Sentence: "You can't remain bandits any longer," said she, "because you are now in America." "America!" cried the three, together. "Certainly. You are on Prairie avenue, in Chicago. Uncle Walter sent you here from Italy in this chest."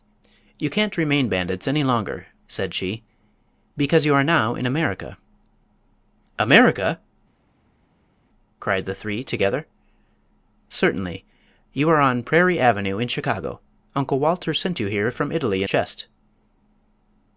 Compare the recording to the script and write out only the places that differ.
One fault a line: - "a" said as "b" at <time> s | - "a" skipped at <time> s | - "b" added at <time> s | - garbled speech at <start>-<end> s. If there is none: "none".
- "this" skipped at 15.7 s